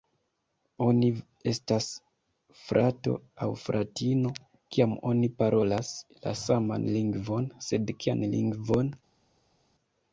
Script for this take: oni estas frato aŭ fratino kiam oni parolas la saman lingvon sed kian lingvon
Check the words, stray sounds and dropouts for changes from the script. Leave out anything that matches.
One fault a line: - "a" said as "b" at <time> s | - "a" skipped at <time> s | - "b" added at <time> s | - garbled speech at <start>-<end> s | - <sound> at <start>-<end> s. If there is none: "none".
none